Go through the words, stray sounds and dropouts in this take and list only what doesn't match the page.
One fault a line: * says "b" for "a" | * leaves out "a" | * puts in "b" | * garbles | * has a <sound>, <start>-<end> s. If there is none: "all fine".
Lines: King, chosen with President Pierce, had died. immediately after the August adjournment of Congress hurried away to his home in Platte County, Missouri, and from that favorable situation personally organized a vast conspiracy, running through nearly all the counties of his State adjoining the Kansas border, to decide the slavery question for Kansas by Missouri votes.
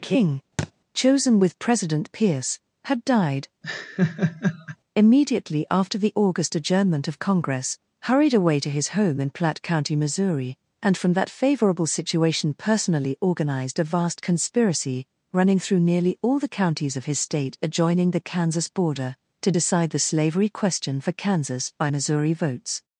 * has a thud, 0.6-0.7 s
* has a laugh, 3.6-4.8 s